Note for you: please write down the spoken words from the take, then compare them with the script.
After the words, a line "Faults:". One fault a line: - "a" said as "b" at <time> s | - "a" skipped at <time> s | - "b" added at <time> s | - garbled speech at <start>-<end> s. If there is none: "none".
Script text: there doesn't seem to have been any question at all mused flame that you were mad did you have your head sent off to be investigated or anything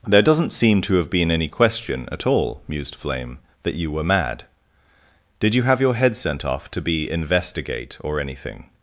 there doesn't seem to have been any question at all mused flame that you were mad did you have your head sent off to be investigate or anything
Faults:
- "investigated" said as "investigate" at 7.1 s